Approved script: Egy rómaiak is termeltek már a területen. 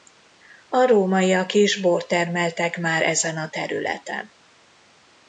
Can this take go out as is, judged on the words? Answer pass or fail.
fail